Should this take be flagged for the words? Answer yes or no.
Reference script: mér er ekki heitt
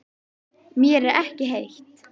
no